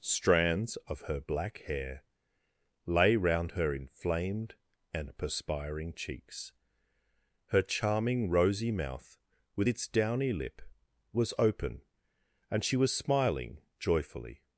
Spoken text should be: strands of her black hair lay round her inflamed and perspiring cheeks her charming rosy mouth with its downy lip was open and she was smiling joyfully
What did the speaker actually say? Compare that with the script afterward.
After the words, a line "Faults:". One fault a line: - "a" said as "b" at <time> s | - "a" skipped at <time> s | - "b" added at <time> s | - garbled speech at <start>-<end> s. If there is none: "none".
strands of her black hair lay round her inflamed and perspiring cheeks her charming rosy mouth with its downy lip was open and she was smiling joyfully
Faults:
none